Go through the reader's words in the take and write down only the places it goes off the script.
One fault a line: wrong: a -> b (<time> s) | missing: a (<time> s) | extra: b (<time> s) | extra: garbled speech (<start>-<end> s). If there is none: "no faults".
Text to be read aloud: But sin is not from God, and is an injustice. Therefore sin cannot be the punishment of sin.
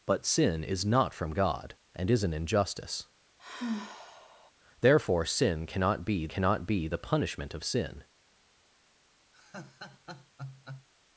extra: cannot be (6.3 s)